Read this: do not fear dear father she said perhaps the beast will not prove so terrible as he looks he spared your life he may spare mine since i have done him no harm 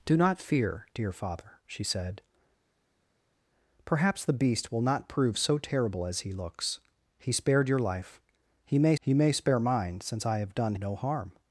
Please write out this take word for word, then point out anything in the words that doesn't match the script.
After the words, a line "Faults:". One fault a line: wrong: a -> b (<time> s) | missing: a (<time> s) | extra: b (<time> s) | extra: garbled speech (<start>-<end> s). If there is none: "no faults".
do not fear dear father she said perhaps the beast will not prove so terrible as he looks he spared your life he may he may spare mine since i have done no harm
Faults:
extra: he may (9.0 s)
missing: him (10.7 s)